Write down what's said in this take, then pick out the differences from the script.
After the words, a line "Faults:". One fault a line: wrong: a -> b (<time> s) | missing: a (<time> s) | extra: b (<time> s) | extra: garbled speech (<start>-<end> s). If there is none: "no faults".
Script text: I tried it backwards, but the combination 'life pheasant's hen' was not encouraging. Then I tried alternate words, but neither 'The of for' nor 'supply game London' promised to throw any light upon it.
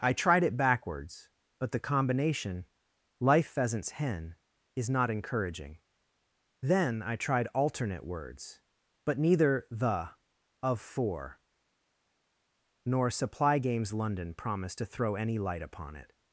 I tried it backwards, but the combination 'life pheasant's hen' is not encouraging. Then I tried alternate words, but neither 'The of for' nor 'supply games London' promised to throw any light upon it.
Faults:
wrong: was -> is (4.7 s)
wrong: game -> games (13.6 s)